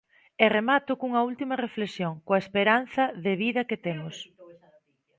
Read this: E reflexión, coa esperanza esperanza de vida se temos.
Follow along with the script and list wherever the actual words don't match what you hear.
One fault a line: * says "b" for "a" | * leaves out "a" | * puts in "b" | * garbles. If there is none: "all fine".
* puts in "remato cunha última"
* leaves out "esperanza"
* says "que" for "se"